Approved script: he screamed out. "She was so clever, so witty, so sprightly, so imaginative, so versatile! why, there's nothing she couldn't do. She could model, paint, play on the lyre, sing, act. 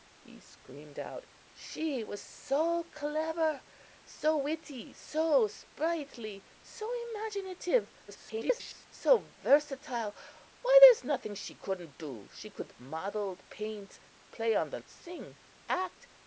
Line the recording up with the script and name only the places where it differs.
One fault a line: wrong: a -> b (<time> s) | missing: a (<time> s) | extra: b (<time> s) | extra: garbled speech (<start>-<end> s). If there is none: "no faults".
extra: garbled speech (8.1-8.9 s)
missing: lyre (14.8 s)